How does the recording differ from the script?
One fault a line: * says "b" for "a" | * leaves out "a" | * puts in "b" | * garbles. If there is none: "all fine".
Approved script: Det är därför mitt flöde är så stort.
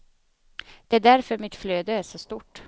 all fine